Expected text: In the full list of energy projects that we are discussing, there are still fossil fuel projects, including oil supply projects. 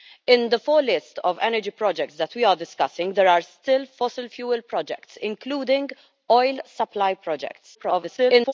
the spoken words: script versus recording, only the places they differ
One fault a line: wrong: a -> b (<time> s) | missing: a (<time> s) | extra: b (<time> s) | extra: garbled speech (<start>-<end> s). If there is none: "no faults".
extra: garbled speech (7.7-8.5 s)